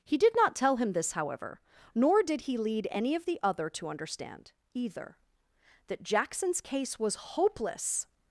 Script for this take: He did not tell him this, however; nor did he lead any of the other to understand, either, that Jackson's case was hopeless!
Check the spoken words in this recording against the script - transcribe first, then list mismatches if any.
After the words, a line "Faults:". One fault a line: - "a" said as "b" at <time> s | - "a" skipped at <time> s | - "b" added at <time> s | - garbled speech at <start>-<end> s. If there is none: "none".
He did not tell him this, however; nor did he lead any of the other to understand, either, that Jackson's case was hopeless!
Faults:
none